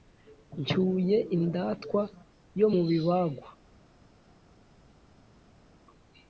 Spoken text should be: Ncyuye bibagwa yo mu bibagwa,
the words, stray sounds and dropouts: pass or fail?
fail